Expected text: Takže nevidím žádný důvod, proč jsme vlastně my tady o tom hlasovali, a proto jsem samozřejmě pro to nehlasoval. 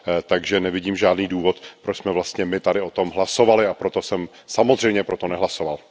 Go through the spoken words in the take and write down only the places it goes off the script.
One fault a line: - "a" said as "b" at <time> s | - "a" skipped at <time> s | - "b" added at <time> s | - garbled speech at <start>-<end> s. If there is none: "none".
none